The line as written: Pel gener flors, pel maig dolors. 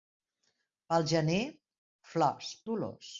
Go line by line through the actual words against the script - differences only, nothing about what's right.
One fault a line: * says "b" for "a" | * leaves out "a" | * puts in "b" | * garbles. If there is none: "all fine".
* leaves out "pel maig"